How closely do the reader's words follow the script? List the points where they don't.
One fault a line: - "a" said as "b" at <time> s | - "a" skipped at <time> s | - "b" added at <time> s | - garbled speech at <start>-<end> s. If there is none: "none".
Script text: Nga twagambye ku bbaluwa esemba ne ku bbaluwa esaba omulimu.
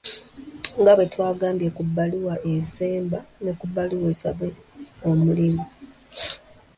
- "bwe" added at 1.0 s